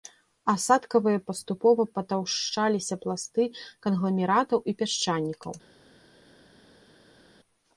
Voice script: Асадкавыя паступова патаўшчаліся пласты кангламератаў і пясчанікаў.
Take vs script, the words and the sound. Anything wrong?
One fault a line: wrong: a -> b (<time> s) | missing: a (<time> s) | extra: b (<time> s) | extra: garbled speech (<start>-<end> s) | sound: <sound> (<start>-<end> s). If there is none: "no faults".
no faults